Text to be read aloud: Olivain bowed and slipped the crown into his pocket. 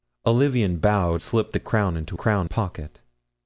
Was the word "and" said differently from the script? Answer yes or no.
yes